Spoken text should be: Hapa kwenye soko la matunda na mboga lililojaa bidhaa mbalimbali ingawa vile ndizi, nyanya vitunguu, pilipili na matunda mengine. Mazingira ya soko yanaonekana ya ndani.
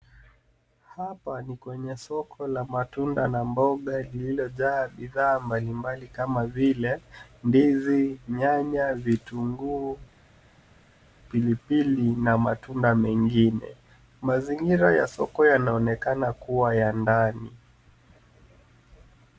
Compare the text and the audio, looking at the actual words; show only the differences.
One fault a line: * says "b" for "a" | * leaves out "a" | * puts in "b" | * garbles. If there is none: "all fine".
* puts in "ni"
* says "kama" for "ingawa"
* puts in "kuwa"